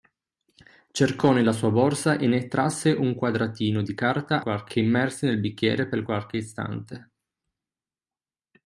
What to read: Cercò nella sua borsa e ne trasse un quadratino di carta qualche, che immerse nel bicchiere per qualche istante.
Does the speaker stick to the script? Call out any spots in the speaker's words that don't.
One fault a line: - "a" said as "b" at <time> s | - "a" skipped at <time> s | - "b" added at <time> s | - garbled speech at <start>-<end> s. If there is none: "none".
none